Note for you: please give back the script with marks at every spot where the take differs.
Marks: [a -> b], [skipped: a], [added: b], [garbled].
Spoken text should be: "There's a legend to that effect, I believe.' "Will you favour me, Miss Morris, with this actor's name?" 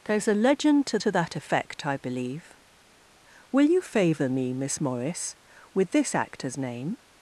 "There's a legend to [added: to] that effect, I believe.' "Will you favour me, Miss Morris, with this actor's name?"